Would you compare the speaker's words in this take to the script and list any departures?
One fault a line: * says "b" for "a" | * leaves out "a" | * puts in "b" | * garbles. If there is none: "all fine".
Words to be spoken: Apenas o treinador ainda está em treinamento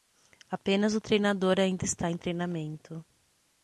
all fine